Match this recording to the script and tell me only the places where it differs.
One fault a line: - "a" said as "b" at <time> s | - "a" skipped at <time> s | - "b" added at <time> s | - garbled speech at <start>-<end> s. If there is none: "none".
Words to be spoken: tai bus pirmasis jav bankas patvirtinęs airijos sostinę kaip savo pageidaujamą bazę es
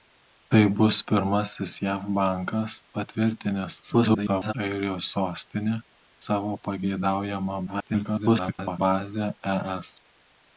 - garbled speech at 3.8-4.5 s
- "kaip" skipped at 5.8 s
- garbled speech at 7.7-8.8 s